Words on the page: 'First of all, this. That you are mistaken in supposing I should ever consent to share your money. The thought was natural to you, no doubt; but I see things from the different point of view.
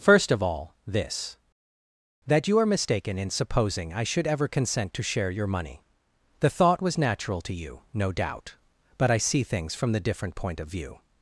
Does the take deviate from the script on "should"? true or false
false